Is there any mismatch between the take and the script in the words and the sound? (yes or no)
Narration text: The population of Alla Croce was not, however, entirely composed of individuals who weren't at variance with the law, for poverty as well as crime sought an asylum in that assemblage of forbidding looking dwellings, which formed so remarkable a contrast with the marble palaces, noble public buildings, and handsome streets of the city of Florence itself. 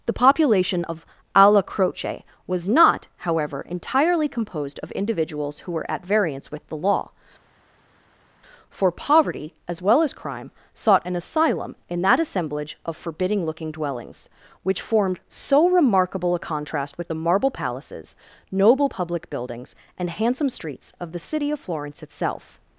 yes